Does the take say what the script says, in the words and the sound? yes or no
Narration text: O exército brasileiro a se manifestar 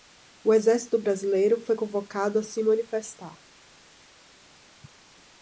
no